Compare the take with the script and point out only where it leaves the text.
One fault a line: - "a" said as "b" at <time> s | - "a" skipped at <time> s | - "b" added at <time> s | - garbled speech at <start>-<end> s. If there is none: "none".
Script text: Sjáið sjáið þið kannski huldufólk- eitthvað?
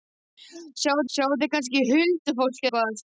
none